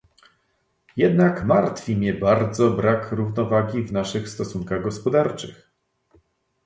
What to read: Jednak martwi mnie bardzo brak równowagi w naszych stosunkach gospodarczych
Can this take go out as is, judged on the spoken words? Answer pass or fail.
pass